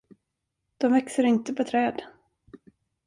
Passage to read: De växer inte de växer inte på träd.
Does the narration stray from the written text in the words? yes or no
yes